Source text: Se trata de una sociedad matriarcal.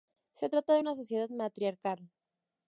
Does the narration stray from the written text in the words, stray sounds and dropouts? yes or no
no